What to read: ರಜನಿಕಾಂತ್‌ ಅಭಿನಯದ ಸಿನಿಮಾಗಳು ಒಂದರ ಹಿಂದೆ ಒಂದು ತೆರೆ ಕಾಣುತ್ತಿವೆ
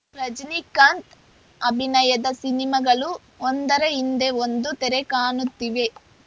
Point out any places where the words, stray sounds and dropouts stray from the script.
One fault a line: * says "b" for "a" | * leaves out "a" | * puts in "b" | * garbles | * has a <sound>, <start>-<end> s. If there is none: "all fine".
all fine